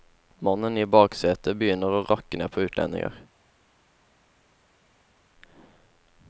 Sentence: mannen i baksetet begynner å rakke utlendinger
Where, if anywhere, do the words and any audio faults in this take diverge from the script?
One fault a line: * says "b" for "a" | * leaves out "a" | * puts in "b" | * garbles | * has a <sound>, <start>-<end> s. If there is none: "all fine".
* puts in "ned på"